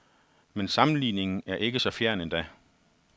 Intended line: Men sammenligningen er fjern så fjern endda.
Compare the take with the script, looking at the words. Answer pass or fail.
fail